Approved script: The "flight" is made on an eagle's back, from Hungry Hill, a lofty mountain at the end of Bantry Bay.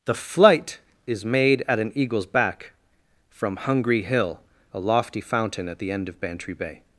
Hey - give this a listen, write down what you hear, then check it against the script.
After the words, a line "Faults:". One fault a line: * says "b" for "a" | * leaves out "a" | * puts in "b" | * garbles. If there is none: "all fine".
The "flight" is made at an eagle's back, from Hungry Hill, a lofty fountain at the end of Bantry Bay.
Faults:
* says "at" for "on"
* says "fountain" for "mountain"